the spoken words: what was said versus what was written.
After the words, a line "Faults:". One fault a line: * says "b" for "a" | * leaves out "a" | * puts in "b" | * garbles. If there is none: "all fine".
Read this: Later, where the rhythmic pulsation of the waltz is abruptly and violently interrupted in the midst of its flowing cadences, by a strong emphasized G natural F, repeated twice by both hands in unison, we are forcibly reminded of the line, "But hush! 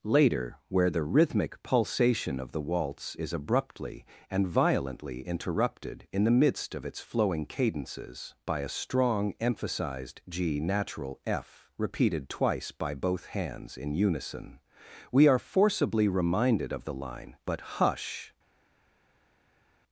Later, where the rhythmic pulsation of the waltz is abruptly and violently interrupted in the midst of its flowing cadences, by a strong emphasized G natural F, repeated twice by both hands in unison, we are forcibly reminded of the line, "But hush!
Faults:
all fine